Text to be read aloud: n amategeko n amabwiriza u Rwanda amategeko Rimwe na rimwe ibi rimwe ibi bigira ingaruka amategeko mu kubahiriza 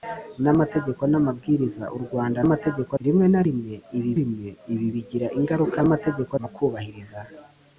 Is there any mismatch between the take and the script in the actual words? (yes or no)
no